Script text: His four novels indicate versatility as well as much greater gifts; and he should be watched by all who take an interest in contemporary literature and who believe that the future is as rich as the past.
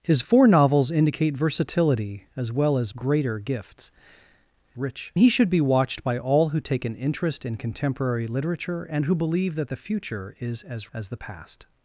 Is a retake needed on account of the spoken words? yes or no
yes